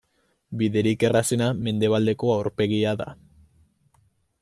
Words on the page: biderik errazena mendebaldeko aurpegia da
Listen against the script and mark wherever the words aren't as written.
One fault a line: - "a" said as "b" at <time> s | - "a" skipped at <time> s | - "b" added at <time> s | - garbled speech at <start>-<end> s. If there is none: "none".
none